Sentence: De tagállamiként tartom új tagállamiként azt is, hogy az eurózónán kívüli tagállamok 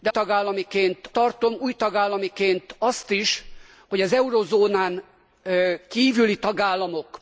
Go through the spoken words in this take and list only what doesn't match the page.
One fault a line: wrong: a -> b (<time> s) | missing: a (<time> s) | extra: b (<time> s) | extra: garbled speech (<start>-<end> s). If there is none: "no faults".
no faults